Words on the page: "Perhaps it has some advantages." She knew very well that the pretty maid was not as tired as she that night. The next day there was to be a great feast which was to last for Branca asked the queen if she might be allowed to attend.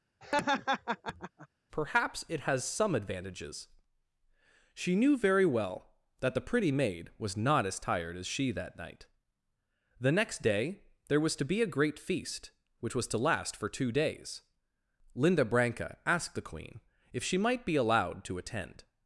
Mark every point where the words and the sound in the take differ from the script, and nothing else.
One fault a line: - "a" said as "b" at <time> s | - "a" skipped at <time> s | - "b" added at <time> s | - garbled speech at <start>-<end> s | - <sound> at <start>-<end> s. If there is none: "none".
- laugh at 0.2-1.5 s
- "two days Linda" added at 13.7 s